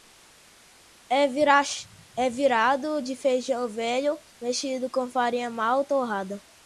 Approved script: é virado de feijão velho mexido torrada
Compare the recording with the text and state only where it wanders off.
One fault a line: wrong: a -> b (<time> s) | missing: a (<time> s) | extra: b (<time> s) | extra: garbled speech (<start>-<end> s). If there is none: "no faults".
extra: com farinha mal (4.9 s)